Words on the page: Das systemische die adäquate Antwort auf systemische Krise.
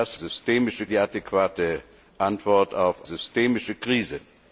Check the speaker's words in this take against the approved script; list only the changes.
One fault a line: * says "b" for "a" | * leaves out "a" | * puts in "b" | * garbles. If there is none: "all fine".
all fine